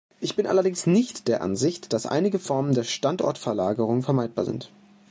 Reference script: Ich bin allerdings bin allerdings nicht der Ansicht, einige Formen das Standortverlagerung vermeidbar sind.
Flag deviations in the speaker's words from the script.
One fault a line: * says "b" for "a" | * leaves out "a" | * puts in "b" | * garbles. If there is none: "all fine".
* leaves out "bin allerdings"
* puts in "dass"
* says "der" for "das"